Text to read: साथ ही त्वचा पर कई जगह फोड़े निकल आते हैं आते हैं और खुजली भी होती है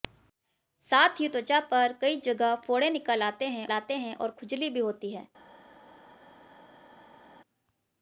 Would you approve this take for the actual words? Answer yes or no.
yes